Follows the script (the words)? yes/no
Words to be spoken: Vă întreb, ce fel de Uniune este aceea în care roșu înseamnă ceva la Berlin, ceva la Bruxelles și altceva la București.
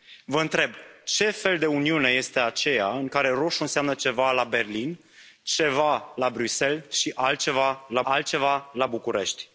no